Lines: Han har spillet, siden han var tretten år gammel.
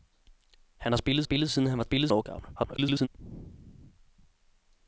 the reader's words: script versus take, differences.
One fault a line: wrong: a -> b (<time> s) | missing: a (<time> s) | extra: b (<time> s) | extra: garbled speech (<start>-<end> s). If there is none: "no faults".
extra: spillet (1.2 s)
wrong: tretten -> spillet (1.8 s)
extra: garbled speech (2.5-3.1 s)